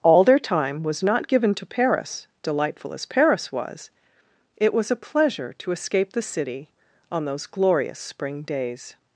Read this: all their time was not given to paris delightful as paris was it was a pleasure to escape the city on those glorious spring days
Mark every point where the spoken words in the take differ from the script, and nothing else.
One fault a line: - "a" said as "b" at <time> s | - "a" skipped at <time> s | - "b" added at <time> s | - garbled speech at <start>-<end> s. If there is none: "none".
none